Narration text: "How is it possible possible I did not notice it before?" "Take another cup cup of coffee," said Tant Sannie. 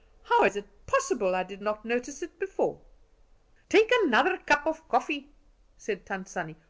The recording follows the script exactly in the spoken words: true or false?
false